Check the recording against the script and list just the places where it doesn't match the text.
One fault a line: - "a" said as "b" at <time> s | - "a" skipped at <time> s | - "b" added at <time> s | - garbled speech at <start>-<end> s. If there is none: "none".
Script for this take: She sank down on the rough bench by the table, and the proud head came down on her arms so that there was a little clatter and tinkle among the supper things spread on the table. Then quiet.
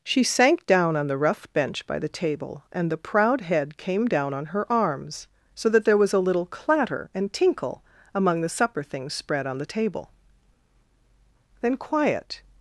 none